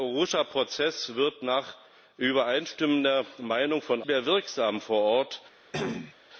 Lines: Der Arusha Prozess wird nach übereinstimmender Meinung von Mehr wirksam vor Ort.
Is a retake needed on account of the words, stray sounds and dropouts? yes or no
yes